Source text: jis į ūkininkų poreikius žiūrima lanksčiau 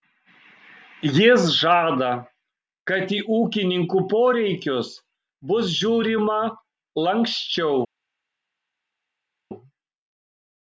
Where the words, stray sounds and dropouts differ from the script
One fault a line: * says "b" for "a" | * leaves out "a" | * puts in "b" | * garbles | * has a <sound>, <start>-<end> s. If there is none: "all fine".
* puts in "žada kad"
* puts in "bus"